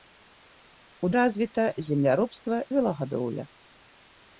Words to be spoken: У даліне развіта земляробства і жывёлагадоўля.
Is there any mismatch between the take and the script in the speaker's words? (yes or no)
yes